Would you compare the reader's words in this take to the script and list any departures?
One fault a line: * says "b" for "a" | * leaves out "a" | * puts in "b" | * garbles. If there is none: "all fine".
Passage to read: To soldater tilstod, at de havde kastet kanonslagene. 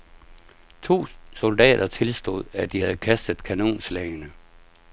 all fine